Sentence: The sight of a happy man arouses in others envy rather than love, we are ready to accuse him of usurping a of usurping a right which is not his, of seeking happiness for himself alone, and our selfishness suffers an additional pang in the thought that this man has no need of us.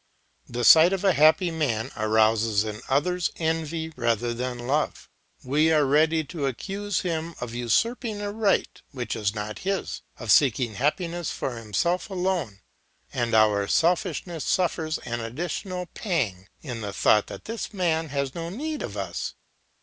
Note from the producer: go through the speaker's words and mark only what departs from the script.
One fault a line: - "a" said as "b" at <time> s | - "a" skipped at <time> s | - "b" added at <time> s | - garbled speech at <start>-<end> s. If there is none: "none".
- "of usurping a" skipped at 8.3 s